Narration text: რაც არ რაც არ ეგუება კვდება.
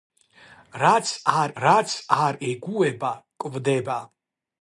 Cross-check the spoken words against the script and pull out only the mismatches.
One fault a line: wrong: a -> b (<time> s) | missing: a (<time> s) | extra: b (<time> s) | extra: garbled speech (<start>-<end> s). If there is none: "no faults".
no faults